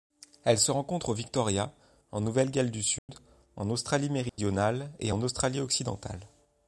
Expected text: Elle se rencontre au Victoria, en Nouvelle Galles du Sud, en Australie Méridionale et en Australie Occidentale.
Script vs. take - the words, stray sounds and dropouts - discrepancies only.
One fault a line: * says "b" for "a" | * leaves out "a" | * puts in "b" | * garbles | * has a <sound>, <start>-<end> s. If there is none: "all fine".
* has a dropout, 3.0-3.1 s
* has a dropout, 4.3-4.4 s